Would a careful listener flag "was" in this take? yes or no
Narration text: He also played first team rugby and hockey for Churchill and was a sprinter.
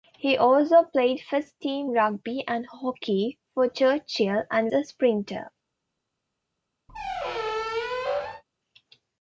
yes